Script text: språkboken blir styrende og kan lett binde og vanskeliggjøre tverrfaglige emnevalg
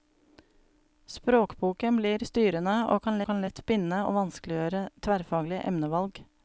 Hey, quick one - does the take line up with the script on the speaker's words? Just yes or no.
no